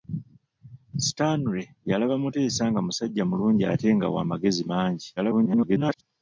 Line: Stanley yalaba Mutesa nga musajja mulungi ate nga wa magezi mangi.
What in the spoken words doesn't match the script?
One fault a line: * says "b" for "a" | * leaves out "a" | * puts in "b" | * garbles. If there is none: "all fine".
* garbles